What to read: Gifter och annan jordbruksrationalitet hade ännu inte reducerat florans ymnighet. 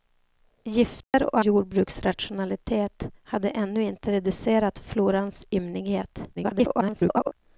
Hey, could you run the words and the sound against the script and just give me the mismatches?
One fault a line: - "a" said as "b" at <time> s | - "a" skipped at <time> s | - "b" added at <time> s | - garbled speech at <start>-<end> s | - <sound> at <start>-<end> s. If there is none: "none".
- dropout at 1.0-1.1 s
- "annan" skipped at 1.4 s
- garbled speech at 6.4-7.3 s